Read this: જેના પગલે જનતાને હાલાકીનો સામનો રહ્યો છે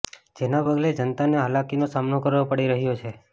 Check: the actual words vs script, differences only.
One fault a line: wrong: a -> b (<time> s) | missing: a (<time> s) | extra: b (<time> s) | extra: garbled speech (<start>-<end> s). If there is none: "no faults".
extra: કરવો પડી (2.2 s)